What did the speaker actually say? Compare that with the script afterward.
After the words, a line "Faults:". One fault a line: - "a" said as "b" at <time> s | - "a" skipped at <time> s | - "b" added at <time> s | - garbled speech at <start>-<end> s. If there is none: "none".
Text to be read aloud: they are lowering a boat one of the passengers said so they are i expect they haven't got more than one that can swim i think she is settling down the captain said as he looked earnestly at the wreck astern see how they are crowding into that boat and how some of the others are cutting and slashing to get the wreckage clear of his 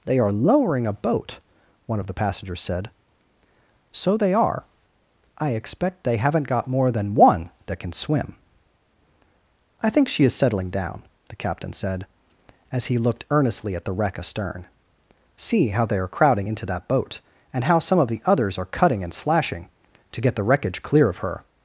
they are lowering a boat one of the passengers said so they are i expect they haven't got more than one that can swim i think she is settling down the captain said as he looked earnestly at the wreck astern see how they are crowding into that boat and how some of the others are cutting and slashing to get the wreckage clear of her
Faults:
- "his" said as "her" at 21.2 s